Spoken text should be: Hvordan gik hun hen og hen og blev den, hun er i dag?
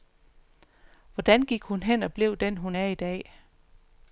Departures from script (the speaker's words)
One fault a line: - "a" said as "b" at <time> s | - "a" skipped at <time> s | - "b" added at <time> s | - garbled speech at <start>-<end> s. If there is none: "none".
- "hen og" skipped at 2.1 s